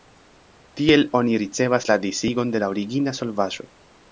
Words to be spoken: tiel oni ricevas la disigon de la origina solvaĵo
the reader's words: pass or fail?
pass